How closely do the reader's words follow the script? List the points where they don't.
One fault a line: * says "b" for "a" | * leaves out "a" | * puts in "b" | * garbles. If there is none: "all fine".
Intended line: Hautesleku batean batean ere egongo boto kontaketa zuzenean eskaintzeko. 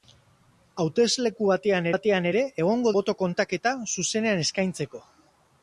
all fine